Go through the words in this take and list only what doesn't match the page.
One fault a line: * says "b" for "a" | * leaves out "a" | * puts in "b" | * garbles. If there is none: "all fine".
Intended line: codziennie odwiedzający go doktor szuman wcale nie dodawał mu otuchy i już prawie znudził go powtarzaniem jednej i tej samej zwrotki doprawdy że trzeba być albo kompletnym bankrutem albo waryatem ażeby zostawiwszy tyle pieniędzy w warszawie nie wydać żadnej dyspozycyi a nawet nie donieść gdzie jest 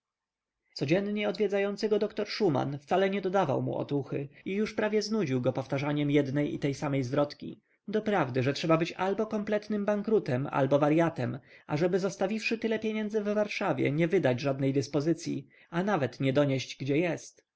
all fine